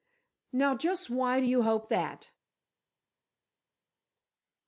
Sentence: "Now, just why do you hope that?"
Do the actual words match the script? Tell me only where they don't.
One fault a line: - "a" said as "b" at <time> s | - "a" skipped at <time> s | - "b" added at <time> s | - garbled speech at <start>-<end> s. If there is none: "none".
none